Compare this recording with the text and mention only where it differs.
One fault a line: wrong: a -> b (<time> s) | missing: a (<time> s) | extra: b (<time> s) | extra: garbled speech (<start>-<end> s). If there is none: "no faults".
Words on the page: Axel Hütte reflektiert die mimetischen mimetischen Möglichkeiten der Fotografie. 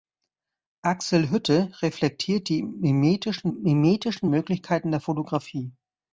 no faults